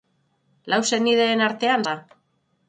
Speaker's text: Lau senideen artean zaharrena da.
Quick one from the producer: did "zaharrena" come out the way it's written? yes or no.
no